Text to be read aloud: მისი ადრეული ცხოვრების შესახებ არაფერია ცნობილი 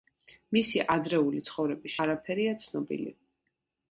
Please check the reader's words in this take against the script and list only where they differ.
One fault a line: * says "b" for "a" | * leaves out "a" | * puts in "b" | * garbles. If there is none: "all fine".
* leaves out "შესახებ"